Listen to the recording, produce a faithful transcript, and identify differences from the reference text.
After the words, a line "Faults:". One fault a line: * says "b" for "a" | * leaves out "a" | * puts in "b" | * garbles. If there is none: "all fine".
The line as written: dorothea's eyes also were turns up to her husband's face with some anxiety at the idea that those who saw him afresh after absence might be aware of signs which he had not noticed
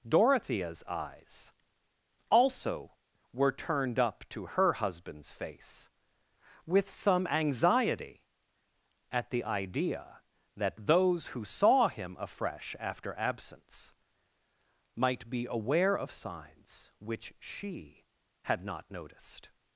dorothea's eyes also were turned up to her husband's face with some anxiety at the idea that those who saw him afresh after absence might be aware of signs which she had not noticed
Faults:
* says "turned" for "turns"
* says "she" for "he"